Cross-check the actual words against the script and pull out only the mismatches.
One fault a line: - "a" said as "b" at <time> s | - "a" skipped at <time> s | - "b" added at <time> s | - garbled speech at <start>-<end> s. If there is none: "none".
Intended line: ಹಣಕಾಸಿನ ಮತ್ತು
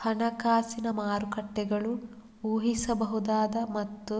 - "ಮಾರುಕಟ್ಟೆಗಳು ಊಹಿಸಬಹುದಾದ" added at 0.9 s